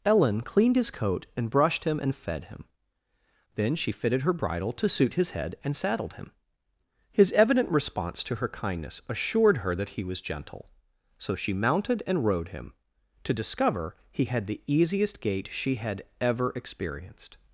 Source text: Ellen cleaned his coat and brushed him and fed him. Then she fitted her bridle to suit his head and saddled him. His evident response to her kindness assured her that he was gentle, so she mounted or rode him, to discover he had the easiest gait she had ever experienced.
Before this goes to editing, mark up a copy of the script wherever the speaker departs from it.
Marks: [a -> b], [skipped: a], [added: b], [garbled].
Ellen cleaned his coat and brushed him and fed him. Then she fitted her bridle to suit his head and saddled him. His evident response to her kindness assured her that he was gentle, so she mounted [or -> and] rode him, to discover he had the easiest gait she had ever experienced.